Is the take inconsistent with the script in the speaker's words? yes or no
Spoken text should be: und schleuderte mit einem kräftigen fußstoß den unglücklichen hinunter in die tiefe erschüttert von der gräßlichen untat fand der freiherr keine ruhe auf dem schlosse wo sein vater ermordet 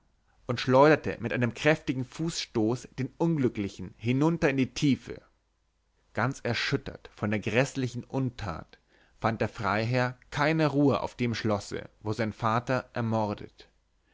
yes